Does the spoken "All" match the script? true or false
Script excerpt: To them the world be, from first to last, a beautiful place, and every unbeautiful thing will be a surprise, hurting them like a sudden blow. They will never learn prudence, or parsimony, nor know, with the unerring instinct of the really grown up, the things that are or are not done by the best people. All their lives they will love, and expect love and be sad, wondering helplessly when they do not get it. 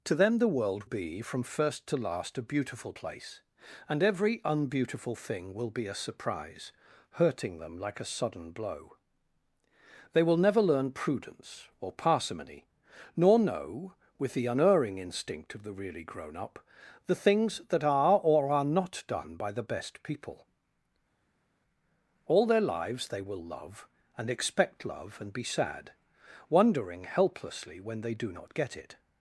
true